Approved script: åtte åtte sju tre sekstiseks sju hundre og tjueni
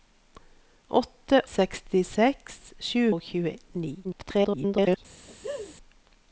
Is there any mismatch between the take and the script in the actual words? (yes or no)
yes